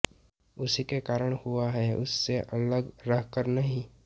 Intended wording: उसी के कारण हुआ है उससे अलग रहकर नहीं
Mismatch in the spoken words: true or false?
false